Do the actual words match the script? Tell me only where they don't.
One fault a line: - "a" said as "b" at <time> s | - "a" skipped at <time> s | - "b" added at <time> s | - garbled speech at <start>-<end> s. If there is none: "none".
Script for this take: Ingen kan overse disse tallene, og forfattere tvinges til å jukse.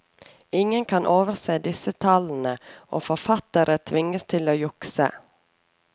none